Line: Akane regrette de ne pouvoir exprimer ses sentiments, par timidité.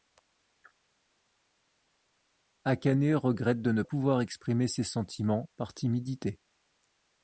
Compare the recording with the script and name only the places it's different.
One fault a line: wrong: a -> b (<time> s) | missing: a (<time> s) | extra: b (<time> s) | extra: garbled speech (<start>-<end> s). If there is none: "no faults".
no faults